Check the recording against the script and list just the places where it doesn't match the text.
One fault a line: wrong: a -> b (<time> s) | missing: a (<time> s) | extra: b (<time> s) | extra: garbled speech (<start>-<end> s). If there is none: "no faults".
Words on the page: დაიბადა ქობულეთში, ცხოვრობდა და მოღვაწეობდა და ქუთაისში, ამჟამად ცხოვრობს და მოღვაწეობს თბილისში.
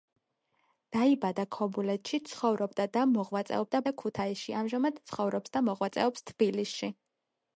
no faults